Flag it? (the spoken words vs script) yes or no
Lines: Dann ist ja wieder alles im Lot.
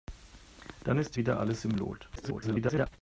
yes